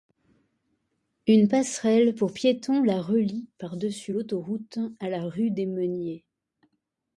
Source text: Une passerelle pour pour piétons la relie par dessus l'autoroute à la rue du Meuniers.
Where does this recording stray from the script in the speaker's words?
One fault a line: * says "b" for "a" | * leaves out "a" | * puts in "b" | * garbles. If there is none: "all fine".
* leaves out "pour"
* says "des" for "du"